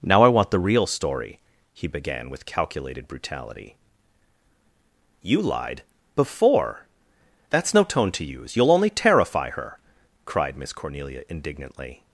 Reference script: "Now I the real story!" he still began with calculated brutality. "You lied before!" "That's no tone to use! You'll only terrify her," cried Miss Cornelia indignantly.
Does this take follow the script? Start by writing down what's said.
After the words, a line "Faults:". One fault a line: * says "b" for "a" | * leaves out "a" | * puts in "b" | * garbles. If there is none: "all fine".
"Now I want the real story!" he began with calculated brutality. "You lied before!" "That's no tone to use! You'll only terrify her," cried Miss Cornelia indignantly.
Faults:
* puts in "want"
* leaves out "still"